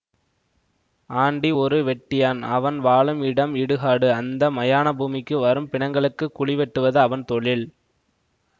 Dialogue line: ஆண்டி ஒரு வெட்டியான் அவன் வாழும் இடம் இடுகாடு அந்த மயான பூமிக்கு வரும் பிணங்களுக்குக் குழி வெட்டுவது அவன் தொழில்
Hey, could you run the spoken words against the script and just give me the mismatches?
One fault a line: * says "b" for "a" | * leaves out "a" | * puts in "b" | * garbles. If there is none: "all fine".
all fine